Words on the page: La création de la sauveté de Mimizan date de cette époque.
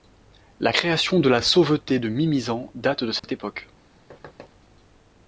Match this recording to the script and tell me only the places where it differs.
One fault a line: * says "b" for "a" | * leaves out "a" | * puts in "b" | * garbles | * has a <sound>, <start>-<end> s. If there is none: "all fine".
* has a dropout, 3.2-3.2 s
* has a thud, 4.1-4.5 s